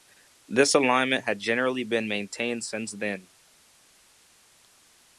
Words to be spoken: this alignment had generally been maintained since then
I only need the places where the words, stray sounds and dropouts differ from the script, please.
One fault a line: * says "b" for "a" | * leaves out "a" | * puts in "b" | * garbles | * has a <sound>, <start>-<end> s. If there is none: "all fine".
all fine